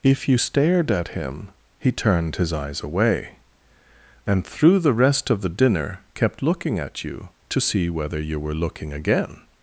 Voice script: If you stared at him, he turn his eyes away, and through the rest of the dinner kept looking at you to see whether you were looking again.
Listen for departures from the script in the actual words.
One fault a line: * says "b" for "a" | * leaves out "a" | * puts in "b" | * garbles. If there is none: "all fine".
* says "turned" for "turn"